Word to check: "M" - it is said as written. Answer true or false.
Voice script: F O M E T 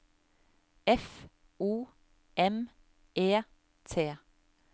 true